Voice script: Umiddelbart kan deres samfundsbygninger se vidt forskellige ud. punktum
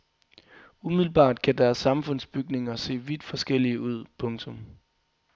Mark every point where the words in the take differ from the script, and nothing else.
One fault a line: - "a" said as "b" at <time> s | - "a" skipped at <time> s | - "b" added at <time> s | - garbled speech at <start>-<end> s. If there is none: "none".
none